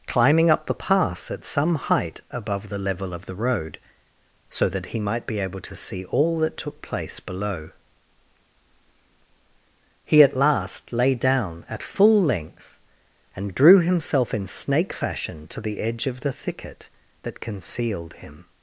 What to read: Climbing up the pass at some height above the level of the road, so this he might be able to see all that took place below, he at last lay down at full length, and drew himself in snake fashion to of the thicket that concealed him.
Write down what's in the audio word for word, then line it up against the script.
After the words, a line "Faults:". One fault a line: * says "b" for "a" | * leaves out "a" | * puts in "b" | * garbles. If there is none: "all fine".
Climbing up the pass at some height above the level of the road, so that he might be able to see all that took place below, he at last lay down at full length, and drew himself in snake fashion to the edge of the thicket that concealed him.
Faults:
* says "that" for "this"
* puts in "the edge"